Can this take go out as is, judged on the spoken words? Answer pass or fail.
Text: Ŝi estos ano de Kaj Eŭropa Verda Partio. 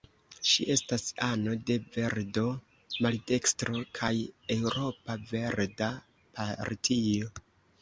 fail